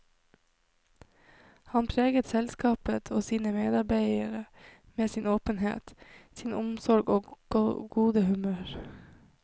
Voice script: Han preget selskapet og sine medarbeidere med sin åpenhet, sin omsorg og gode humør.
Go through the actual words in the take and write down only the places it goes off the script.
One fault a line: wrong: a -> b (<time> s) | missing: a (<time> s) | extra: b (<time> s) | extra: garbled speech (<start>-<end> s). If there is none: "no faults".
no faults